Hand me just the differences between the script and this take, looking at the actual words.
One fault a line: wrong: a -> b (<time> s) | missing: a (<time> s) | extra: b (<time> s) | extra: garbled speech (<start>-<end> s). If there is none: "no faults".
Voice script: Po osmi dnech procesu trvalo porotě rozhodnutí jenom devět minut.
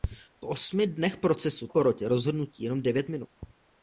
missing: trvalo (1.7 s)